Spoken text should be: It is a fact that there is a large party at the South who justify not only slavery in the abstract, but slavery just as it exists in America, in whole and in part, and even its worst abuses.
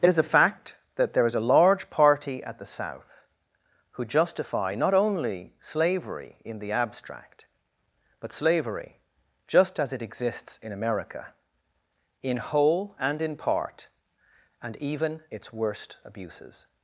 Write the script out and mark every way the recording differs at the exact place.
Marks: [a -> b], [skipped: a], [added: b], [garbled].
It is a fact that there is a large party at the South who justify not only slavery in the abstract, but slavery just as it exists in America, in whole and in part, and even its worst abuses.